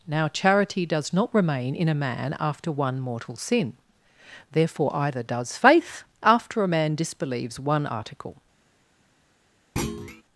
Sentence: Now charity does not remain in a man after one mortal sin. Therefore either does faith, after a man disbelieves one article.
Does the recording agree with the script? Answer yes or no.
yes